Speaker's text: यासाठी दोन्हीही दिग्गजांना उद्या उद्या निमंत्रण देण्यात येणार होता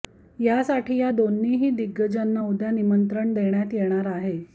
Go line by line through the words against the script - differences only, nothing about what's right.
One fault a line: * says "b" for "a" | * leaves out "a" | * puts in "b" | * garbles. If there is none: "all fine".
* puts in "या"
* leaves out "उद्या"
* says "आहे" for "होता"